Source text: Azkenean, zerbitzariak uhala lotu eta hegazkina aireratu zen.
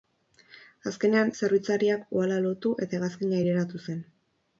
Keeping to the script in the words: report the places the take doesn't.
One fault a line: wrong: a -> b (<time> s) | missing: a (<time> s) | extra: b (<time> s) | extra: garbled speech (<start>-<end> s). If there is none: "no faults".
no faults